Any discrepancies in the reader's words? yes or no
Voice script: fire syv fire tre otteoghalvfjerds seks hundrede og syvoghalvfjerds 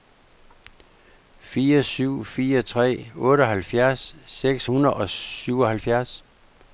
no